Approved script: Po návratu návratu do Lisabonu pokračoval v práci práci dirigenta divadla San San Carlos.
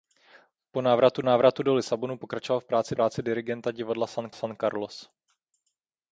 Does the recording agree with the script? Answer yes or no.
yes